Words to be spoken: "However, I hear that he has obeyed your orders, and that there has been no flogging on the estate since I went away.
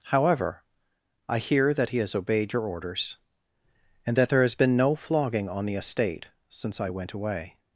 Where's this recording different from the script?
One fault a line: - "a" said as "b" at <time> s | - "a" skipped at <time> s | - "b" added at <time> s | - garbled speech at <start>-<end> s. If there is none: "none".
none